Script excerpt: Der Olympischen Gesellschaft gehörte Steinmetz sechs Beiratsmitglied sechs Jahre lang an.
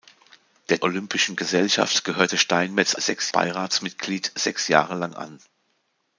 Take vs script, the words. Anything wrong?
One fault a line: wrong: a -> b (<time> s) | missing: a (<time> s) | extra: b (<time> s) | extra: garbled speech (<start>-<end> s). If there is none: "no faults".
no faults